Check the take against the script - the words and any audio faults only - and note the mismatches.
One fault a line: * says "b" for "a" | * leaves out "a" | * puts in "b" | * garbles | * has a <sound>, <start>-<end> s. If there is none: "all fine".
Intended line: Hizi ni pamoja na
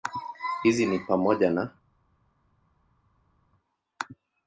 all fine